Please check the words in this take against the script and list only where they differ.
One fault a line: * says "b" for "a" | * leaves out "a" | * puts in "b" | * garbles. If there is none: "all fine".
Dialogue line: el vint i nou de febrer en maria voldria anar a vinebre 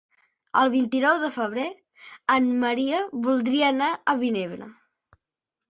all fine